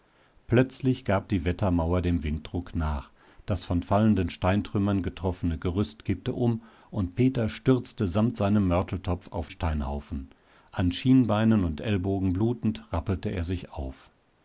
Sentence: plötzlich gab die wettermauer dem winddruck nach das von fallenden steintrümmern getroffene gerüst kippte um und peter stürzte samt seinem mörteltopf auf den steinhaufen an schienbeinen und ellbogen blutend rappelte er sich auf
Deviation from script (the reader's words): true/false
true